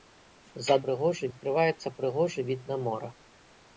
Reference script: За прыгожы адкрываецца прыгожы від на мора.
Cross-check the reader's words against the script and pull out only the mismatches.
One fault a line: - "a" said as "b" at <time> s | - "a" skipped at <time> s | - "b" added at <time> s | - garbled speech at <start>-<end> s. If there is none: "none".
none